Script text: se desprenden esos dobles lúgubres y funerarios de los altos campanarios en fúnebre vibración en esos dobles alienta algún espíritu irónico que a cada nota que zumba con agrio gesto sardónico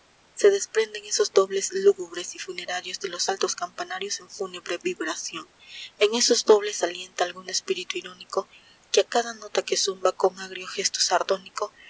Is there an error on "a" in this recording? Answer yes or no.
no